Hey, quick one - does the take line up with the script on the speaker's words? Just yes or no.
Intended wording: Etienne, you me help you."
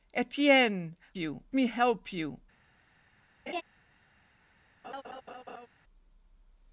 yes